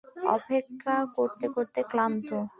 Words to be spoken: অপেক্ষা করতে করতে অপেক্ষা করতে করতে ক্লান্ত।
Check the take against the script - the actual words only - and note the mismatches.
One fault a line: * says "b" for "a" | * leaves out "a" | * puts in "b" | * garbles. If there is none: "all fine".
* leaves out "অপেক্ষা করতে করতে"